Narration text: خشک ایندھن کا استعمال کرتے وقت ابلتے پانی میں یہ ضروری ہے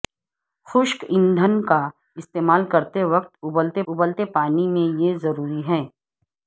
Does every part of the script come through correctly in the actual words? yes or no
no